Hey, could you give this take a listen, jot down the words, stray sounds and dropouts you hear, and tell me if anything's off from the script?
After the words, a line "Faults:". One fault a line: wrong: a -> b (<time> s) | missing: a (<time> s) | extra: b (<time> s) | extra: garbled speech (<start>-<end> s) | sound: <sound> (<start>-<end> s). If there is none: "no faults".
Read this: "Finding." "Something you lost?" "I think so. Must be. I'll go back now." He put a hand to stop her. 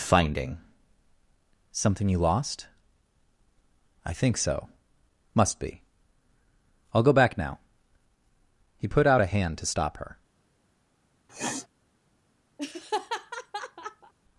"Finding." "Something you lost?" "I think so. Must be. I'll go back now." He put out a hand to stop her.
Faults:
extra: out (9.1 s)
sound: sniff (11.3-11.7 s)
sound: laugh (12.6-14.1 s)